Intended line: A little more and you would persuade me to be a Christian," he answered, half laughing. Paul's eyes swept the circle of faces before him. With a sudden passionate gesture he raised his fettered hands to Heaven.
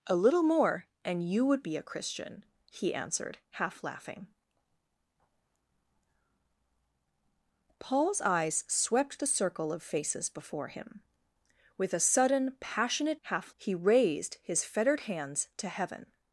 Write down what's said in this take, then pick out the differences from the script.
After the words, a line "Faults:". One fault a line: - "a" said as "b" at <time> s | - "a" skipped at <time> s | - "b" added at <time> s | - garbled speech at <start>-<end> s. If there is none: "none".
A little more and you would be a Christian," he answered, half laughing. Paul's eyes swept the circle of faces before him. With a sudden passionate half he raised his fettered hands to Heaven.
Faults:
- "persuade me to" skipped at 1.6 s
- "gesture" said as "half" at 13.2 s